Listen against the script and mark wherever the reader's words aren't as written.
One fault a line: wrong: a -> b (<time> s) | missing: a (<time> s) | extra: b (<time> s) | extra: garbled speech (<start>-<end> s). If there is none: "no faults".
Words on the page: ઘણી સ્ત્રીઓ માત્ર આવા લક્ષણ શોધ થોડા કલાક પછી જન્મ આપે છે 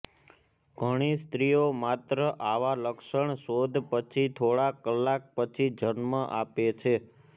extra: પછી (3.9 s)